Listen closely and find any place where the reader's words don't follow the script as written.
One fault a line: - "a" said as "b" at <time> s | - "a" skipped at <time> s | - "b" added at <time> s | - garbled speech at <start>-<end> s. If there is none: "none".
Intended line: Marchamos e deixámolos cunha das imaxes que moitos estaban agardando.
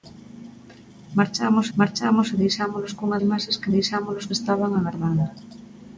- "marchamos" added at 1.8 s
- "das" skipped at 3.2 s
- "moitos" said as "deixámolos" at 3.8 s